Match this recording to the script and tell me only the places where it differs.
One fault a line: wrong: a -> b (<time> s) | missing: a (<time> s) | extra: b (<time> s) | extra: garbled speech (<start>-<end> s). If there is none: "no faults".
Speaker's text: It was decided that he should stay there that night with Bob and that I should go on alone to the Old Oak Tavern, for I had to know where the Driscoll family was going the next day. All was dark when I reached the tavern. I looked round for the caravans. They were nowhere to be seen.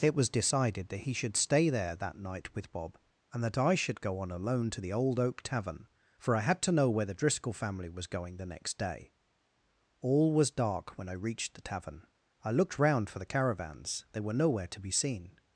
no faults